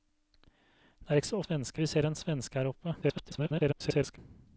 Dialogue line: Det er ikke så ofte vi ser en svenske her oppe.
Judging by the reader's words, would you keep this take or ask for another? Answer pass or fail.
fail